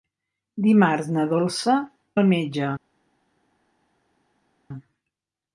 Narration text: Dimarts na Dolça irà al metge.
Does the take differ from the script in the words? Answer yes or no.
yes